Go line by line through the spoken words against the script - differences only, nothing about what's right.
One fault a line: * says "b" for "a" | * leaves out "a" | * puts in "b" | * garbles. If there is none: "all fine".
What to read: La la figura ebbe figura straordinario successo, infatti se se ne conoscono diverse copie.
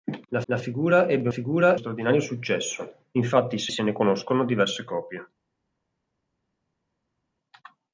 all fine